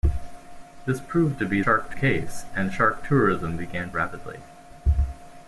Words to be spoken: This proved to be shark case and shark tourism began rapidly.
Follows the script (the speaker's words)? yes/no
yes